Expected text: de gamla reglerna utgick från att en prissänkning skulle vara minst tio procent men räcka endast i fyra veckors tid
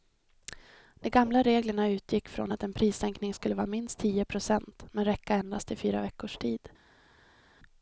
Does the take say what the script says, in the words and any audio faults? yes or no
yes